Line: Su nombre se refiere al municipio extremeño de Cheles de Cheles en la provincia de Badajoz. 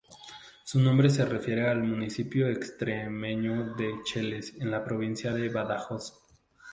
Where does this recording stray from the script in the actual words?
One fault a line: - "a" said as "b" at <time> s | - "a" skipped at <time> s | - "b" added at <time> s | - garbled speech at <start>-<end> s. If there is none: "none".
- "de Cheles" skipped at 4.6 s